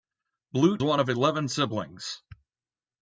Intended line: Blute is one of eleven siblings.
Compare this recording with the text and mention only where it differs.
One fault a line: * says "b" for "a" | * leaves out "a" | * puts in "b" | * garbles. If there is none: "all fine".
* leaves out "is"